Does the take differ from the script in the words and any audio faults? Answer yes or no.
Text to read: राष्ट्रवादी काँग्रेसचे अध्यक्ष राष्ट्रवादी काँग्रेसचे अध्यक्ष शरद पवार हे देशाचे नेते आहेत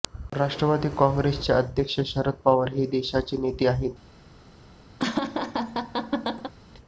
yes